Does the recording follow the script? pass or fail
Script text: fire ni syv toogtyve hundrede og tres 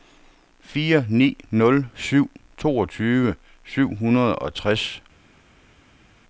fail